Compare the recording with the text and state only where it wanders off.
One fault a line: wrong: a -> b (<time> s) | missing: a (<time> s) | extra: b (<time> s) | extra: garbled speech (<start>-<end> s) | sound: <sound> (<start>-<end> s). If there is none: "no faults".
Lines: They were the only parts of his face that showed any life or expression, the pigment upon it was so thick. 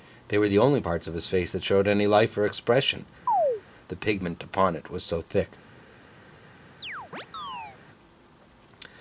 sound: chirp (3.3-3.6 s)
sound: chirp (6.8-7.8 s)